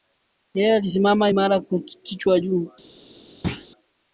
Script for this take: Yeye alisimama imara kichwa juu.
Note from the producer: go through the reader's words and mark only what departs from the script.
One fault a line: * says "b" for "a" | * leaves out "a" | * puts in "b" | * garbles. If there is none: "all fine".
all fine